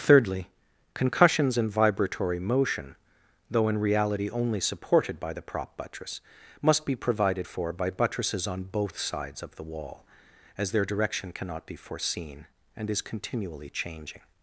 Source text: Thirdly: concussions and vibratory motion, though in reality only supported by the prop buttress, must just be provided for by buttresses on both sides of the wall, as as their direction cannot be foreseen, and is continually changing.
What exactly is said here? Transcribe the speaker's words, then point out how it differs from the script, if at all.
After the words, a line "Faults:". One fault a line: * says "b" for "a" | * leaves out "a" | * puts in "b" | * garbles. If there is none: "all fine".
Thirdly: concussions and vibratory motion, though in reality only supported by the prop buttress, must be provided for by buttresses on both sides of the wall, as their direction cannot be foreseen, and is continually changing.
Faults:
* leaves out "just"
* leaves out "as"